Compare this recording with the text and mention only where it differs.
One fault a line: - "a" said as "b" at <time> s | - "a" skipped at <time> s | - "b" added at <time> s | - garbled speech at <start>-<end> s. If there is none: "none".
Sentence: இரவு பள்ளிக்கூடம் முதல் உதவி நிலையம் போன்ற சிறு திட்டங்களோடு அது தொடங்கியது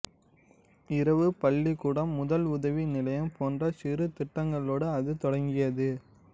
none